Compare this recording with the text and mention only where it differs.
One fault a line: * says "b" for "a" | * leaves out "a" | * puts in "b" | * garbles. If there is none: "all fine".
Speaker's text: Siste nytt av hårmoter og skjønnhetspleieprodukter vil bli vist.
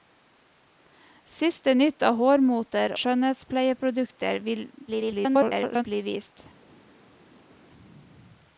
* leaves out "og"
* garbles